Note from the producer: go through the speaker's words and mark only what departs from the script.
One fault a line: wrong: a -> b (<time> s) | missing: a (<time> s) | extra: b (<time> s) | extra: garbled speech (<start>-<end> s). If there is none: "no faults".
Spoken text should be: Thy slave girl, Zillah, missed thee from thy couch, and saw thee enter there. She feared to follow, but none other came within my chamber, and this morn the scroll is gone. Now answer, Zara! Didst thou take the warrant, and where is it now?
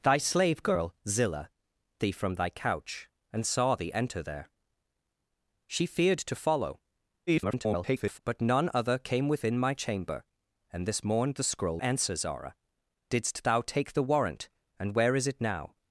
missing: missed (1.5 s)
extra: garbled speech (7.3-8.2 s)
missing: is gone Now (11.8 s)